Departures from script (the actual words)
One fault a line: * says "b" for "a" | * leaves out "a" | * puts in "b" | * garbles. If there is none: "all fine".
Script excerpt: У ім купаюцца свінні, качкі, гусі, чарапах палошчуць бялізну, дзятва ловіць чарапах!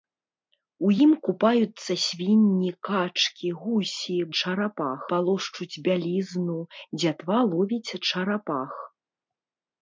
all fine